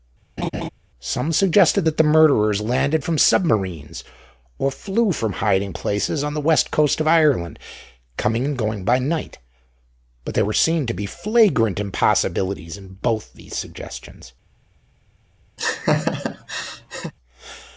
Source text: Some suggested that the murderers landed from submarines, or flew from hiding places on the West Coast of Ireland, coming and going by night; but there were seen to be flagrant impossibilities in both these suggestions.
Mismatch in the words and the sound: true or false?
true